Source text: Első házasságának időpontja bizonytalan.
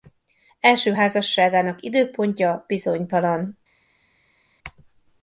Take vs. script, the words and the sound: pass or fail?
pass